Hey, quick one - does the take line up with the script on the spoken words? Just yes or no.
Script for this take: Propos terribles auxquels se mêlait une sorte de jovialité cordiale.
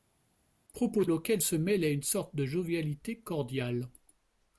no